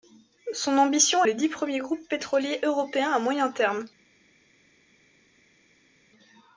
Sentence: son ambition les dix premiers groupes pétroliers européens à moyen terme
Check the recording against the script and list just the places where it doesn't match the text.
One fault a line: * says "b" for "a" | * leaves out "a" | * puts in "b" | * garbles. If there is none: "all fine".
all fine